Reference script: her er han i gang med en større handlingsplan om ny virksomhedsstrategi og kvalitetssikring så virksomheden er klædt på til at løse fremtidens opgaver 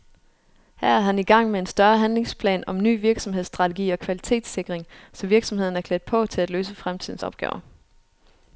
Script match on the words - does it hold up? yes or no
yes